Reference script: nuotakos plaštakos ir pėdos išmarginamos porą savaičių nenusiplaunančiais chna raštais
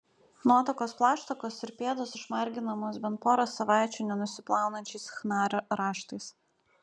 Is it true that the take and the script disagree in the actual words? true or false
true